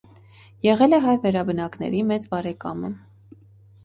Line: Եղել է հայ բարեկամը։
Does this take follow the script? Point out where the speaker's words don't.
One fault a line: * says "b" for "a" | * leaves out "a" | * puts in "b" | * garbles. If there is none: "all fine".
* puts in "վերաբնակների մեծ"